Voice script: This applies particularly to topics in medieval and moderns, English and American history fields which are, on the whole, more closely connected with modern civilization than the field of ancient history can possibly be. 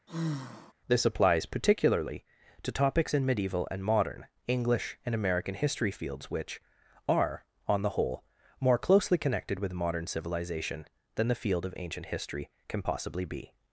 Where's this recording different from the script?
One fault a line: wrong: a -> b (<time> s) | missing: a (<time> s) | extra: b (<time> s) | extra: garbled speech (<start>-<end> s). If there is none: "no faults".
wrong: moderns -> modern (3.8 s)